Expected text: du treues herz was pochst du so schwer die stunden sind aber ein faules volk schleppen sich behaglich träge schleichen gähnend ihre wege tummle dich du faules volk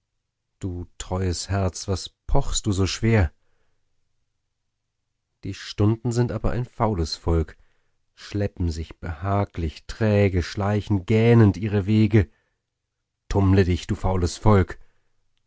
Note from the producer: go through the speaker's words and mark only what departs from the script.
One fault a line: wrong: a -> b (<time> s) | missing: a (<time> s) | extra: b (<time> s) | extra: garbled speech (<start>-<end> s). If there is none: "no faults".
no faults